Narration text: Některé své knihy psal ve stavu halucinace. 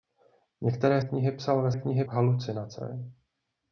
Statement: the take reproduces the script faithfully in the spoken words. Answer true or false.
false